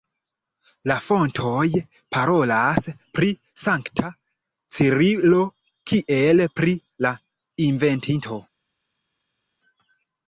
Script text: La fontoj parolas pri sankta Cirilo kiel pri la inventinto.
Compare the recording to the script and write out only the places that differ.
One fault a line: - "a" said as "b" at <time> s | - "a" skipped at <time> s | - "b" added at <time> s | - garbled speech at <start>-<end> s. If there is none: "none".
none